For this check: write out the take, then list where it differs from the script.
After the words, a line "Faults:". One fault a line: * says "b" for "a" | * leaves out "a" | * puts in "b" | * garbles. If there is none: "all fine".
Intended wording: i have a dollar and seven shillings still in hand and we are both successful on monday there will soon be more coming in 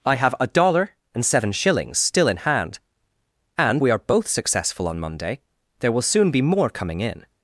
i have a dollar and seven shillings still in hand and we are both successful on monday there will soon be more coming in
Faults:
all fine